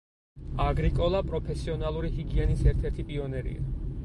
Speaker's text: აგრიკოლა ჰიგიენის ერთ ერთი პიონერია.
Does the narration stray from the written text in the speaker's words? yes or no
yes